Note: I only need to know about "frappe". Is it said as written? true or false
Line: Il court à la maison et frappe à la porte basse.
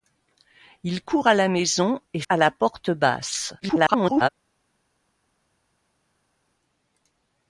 false